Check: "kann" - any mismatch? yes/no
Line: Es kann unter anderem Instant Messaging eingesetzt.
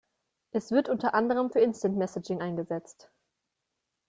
yes